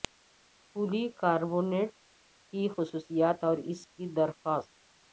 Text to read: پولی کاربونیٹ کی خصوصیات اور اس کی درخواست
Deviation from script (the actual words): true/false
false